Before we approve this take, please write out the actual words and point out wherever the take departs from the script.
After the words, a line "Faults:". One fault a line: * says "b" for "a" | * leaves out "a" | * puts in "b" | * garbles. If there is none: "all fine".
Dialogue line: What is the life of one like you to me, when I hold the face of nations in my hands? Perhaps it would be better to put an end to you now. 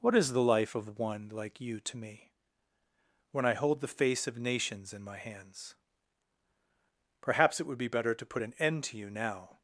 What is the life of one like you to me, when I hold the face of nations in my hands? Perhaps it would be better to put an end to you now.
Faults:
all fine